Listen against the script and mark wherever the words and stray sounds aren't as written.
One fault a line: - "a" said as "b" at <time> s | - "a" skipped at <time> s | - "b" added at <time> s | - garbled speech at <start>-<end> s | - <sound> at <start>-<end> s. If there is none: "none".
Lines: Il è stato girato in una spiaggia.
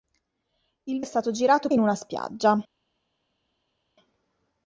none